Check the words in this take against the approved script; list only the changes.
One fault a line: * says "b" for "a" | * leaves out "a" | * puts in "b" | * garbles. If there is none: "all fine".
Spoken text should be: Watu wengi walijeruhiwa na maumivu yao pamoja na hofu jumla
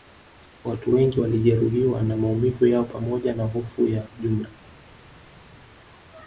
* puts in "ya"